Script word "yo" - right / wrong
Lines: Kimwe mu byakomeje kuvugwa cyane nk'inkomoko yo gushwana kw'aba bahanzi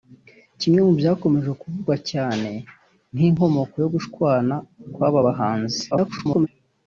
right